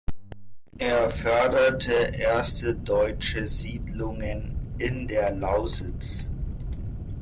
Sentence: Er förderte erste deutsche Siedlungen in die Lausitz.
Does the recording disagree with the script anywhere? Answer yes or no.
yes